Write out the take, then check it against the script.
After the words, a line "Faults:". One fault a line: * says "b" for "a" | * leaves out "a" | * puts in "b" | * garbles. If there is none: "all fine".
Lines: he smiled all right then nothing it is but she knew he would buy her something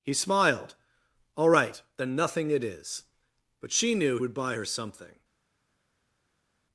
he smiled all right then nothing it is but she knew would buy her something
Faults:
* leaves out "he"